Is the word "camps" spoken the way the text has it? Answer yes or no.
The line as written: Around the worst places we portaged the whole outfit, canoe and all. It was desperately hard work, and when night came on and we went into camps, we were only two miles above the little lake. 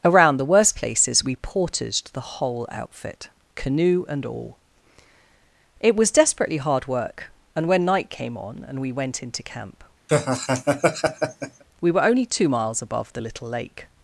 no